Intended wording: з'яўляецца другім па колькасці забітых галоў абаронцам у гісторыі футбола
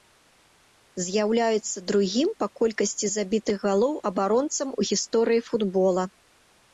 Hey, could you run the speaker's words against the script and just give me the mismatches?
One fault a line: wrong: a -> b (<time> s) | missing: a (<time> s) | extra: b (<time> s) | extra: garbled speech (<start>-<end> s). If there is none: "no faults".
no faults